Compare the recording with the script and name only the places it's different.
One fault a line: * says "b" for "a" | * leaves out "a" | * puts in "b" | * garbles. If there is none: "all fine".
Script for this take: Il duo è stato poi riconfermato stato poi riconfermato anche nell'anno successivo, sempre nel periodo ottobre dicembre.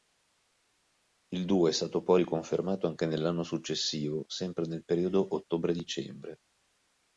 * leaves out "stato poi riconfermato"